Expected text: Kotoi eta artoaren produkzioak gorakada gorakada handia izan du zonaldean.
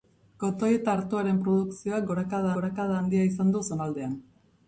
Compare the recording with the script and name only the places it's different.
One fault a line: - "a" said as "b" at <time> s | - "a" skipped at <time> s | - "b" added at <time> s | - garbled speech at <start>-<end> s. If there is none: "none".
none